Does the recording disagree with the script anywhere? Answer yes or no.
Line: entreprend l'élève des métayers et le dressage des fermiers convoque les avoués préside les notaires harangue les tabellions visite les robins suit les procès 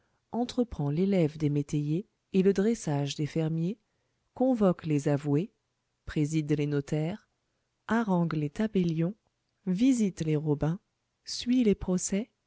no